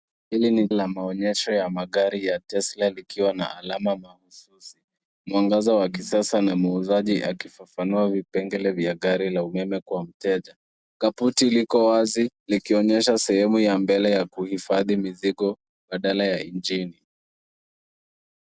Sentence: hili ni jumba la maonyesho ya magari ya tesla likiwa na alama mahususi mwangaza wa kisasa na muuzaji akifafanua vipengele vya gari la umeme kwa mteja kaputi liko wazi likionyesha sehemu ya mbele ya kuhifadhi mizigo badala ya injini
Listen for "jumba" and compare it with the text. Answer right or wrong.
wrong